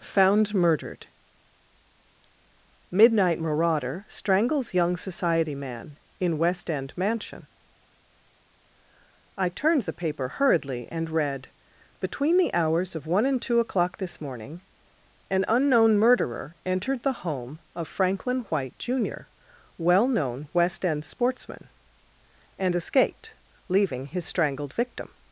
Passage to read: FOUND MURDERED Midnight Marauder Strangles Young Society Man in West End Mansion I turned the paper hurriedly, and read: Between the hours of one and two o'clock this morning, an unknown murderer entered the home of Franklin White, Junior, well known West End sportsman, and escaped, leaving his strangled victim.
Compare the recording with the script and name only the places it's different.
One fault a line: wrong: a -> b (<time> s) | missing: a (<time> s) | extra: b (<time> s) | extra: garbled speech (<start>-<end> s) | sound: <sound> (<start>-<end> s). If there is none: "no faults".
no faults